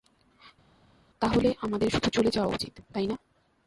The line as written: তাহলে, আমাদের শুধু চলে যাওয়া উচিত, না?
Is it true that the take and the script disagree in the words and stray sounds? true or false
true